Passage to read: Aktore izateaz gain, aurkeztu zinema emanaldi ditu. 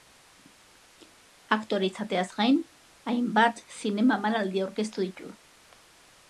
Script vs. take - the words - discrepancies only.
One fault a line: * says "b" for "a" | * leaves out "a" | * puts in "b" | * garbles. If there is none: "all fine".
* says "hainbat" for "aurkeztu"
* puts in "aurkeztu"